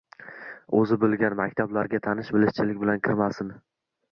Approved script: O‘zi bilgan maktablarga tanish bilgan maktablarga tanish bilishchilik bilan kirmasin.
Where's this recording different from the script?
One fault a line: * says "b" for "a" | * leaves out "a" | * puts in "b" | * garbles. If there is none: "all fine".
* leaves out "bilgan maktablarga tanish"